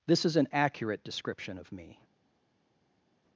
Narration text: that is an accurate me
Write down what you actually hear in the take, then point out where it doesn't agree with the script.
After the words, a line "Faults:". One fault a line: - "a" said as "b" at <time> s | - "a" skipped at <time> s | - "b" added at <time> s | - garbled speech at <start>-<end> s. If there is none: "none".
this is an accurate description of me
Faults:
- "that" said as "this" at 0.1 s
- "description of" added at 1.0 s